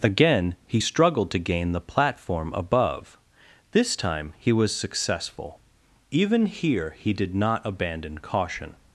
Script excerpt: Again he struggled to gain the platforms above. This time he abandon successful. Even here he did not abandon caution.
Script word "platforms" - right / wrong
wrong